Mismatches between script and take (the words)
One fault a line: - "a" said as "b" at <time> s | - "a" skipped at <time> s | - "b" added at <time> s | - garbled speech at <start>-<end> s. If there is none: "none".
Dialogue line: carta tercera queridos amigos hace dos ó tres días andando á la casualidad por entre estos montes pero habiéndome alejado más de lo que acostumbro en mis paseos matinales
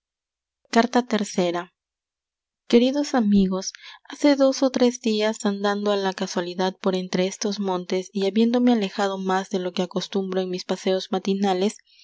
- "pero" said as "y" at 8.1 s